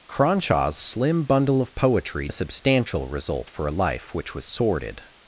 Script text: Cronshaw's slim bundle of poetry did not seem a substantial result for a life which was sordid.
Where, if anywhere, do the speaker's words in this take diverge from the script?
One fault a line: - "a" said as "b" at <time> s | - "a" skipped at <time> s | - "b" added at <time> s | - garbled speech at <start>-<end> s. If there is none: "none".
- "did not seem" skipped at 2.3 s